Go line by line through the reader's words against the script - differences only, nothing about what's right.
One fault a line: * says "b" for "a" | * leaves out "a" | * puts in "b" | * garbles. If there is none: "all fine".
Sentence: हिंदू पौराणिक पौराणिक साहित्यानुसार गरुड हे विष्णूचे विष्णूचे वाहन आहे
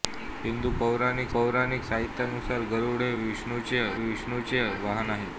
all fine